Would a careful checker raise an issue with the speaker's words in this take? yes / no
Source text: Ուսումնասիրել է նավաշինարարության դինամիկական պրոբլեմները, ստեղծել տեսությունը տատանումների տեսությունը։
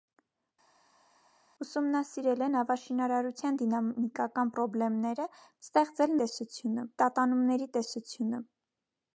no